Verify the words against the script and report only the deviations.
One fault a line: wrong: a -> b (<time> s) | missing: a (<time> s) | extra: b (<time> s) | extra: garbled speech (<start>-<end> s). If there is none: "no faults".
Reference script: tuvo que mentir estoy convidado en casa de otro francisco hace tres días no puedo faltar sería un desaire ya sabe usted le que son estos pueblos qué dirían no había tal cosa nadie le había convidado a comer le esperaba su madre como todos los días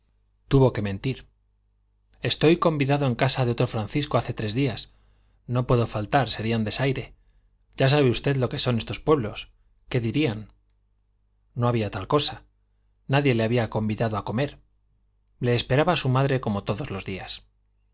wrong: le -> lo (8.4 s)